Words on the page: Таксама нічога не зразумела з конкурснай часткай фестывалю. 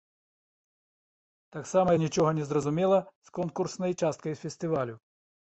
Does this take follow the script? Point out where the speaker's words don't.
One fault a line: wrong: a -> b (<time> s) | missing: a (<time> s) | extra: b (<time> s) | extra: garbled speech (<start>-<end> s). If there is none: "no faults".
no faults